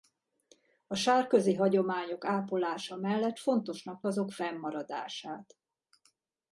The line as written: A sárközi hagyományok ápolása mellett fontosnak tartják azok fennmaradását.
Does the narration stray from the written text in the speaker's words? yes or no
yes